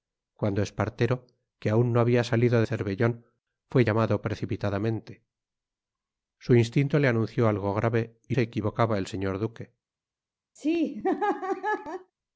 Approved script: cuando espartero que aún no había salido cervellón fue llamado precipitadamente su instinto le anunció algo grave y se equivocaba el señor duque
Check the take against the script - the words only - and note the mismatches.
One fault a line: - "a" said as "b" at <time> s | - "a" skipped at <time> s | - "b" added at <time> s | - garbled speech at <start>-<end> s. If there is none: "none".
none